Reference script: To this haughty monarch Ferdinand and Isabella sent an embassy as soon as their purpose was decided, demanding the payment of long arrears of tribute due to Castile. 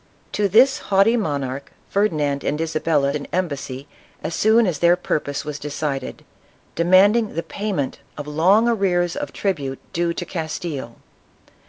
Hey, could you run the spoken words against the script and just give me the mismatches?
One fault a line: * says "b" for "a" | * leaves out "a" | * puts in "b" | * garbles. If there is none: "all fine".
* leaves out "sent"